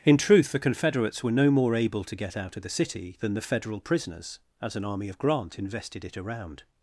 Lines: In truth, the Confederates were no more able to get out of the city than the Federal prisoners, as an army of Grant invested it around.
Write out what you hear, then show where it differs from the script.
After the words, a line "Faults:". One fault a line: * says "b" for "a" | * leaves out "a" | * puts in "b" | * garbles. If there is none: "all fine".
In truth, the Confederates were no more able to get out of the city than the Federal prisoners, as an army of Grant invested it around.
Faults:
all fine